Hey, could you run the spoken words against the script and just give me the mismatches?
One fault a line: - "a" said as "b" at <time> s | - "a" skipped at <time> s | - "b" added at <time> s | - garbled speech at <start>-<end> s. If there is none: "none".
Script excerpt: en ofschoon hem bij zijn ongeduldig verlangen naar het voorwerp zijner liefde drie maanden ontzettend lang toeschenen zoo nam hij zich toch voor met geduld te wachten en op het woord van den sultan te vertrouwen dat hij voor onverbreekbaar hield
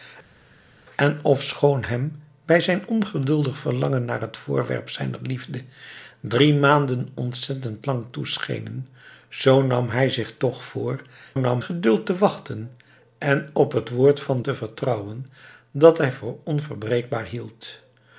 - "met" said as "nam" at 11.4 s
- "den sultan" skipped at 14.4 s